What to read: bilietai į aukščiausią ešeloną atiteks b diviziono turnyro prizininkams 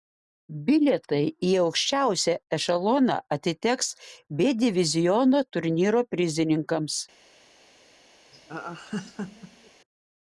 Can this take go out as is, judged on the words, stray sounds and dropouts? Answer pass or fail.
fail